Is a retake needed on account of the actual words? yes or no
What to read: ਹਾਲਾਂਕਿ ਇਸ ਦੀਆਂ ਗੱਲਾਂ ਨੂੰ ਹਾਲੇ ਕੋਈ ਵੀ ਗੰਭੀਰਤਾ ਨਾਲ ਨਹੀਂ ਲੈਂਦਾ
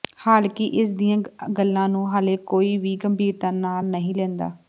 no